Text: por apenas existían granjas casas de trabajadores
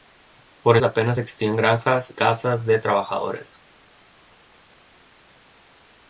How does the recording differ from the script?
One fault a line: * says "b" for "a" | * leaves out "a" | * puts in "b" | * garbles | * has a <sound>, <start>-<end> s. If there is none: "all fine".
all fine